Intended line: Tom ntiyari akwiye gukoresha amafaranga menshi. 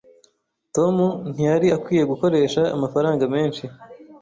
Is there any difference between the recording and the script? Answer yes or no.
no